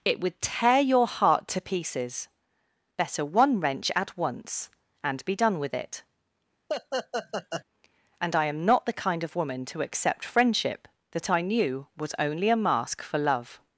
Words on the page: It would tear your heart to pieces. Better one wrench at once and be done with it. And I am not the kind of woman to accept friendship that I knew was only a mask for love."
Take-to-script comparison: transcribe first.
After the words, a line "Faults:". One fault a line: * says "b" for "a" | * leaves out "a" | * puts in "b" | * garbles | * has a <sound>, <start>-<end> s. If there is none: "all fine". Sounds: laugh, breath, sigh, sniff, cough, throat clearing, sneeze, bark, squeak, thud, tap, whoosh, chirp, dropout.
It would tear your heart to pieces. Better one wrench at once and be done with it. And I am not the kind of woman to accept friendship that I knew was only a mask for love."
Faults:
* has a laugh, 6.7-7.6 s